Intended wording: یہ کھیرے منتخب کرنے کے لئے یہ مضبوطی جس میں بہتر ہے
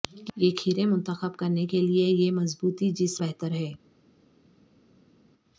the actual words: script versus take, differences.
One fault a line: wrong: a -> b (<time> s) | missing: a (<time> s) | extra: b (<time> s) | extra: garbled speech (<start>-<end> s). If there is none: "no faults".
missing: میں (3.2 s)